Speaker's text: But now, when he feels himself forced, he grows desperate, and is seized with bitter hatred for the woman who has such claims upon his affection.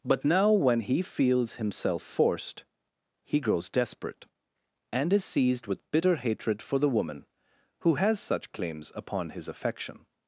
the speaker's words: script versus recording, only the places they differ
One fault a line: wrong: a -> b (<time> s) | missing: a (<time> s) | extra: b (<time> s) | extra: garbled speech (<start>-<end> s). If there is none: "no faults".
no faults